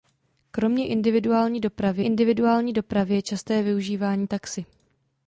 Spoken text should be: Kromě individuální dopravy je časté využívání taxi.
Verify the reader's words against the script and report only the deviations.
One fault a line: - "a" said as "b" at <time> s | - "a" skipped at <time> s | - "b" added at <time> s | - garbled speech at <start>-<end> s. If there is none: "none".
- "individuální dopravy" added at 2.0 s